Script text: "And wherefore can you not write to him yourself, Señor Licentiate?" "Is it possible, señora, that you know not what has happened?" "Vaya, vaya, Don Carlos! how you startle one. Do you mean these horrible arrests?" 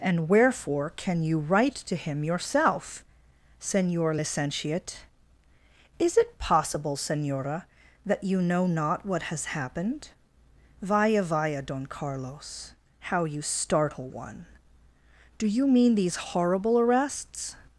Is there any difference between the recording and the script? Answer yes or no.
yes